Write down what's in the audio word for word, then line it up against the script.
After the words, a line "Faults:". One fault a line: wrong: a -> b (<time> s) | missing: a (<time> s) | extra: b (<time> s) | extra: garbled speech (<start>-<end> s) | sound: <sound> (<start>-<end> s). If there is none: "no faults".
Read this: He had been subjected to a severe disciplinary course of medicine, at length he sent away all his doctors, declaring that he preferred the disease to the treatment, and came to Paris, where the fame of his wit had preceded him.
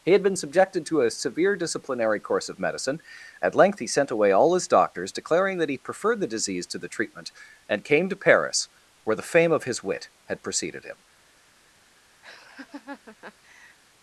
He had been subjected to a severe disciplinary course of medicine, at length he sent away all his doctors, declaring that he preferred the disease to the treatment, and came to Paris, where the fame of his wit had preceded him.
Faults:
sound: laugh (12.2-13.8 s)